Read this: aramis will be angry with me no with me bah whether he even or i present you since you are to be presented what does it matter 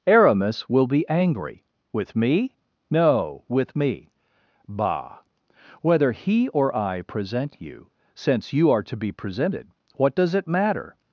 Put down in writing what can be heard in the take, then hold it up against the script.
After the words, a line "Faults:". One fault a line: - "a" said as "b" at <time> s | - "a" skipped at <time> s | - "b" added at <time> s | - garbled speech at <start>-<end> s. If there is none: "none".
aramis will be angry with me no with me bah whether he or i present you since you are to be presented what does it matter
Faults:
- "even" skipped at 6.5 s